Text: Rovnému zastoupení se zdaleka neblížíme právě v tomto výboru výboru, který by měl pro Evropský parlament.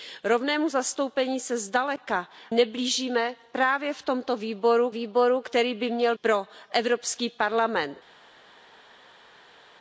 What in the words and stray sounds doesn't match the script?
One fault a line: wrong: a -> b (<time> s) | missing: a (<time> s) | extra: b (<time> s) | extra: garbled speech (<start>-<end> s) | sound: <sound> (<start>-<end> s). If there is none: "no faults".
no faults